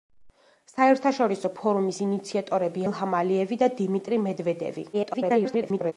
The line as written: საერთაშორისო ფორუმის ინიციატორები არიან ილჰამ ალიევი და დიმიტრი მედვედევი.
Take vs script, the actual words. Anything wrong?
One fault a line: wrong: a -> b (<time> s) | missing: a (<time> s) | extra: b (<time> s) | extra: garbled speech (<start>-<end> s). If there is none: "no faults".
missing: არიან (2.9 s)
extra: garbled speech (4.9-5.9 s)